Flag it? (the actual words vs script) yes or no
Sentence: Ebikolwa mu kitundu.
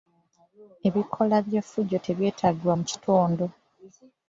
yes